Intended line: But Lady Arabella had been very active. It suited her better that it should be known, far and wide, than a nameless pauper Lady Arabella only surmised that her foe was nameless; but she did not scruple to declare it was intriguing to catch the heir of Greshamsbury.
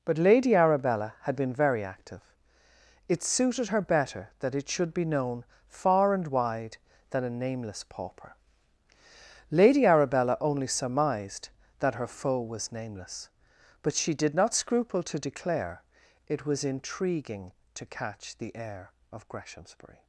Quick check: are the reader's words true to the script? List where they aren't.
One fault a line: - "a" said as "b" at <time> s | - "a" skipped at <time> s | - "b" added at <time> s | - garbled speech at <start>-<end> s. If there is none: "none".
none